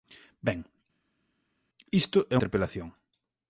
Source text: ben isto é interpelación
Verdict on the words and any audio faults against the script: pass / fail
pass